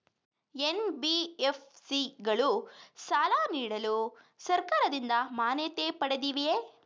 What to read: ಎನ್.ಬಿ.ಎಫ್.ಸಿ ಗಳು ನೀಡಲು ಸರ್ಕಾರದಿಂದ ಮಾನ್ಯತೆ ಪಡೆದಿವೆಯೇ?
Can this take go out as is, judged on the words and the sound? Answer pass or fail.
fail